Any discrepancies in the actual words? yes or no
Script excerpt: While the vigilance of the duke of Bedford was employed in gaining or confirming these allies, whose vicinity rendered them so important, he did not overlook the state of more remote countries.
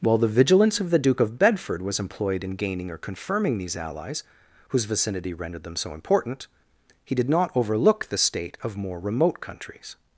no